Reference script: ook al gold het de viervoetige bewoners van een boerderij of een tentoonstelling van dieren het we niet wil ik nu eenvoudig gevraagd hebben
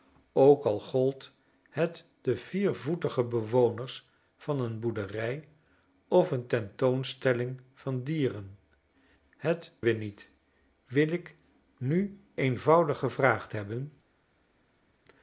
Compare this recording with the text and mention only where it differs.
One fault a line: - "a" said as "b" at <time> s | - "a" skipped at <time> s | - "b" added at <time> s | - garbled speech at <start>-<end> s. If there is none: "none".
none